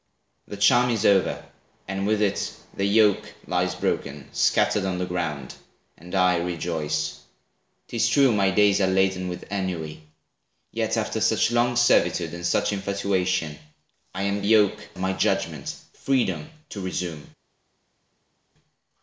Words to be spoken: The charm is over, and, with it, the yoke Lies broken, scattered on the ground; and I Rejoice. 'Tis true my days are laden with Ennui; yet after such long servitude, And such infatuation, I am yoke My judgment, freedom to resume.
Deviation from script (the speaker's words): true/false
false